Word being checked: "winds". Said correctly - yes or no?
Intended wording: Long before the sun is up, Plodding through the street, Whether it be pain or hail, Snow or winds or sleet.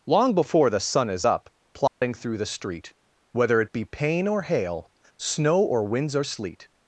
yes